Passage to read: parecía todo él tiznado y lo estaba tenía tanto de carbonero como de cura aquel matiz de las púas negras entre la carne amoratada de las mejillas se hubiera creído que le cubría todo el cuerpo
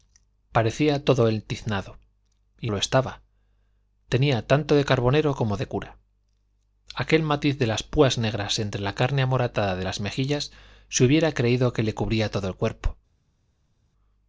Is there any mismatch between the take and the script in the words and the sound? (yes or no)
no